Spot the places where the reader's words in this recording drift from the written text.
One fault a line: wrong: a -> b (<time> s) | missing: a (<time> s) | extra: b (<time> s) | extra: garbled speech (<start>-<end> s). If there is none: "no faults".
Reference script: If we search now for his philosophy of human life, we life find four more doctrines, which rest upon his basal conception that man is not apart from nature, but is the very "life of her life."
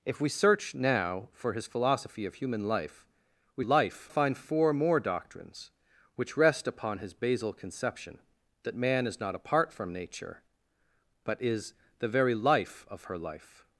no faults